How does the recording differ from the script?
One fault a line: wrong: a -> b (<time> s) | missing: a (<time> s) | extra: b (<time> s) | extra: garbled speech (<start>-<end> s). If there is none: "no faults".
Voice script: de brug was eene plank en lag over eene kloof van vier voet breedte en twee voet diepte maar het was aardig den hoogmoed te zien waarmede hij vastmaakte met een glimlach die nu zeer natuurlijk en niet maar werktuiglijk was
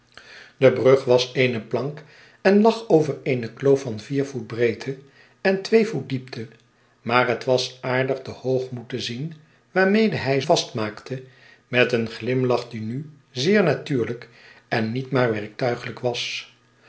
no faults